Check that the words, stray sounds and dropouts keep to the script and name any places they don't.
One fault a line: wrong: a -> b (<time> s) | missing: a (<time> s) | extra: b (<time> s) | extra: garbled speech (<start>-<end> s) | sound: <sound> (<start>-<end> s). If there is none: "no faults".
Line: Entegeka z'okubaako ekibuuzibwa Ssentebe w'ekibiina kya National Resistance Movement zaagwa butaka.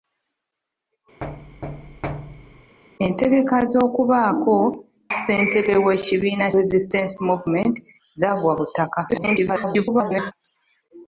sound: thud (1.2-2.8 s)
missing: ekibuuzibwa (4.6 s)
missing: kya National (6.5 s)
extra: garbled speech (9.1-10.3 s)